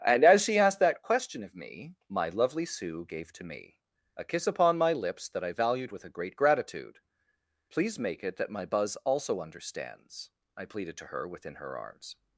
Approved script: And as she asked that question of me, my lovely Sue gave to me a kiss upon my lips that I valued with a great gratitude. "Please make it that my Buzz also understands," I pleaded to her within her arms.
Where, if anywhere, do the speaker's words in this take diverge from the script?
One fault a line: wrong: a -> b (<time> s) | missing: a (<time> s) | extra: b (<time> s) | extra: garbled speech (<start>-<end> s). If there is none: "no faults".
no faults